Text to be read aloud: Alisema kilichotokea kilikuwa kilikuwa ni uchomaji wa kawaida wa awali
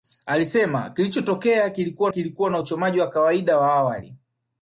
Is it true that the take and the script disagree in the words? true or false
false